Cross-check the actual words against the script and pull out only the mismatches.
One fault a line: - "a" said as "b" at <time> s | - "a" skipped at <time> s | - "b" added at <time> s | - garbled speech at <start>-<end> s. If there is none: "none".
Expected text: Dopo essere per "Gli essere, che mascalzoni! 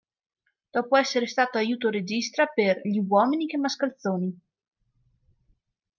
- "stato aiuto regista" added at 1.3 s
- "essere" said as "uomini" at 3.0 s